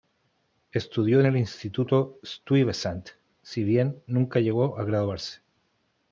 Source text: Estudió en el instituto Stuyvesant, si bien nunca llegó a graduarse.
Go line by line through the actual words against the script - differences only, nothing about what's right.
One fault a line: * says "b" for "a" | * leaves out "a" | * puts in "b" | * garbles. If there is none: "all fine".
all fine